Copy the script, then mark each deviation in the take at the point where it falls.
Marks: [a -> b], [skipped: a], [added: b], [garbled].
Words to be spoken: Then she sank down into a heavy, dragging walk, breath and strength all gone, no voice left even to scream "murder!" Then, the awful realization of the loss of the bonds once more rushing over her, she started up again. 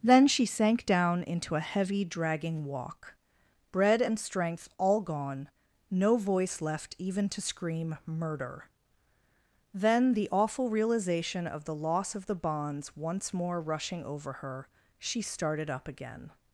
Then she sank down into a heavy, dragging walk, [breath -> bread] and strength all gone, no voice left even to scream "murder!" Then, the awful realization of the loss of the bonds once more rushing over her, she started up again.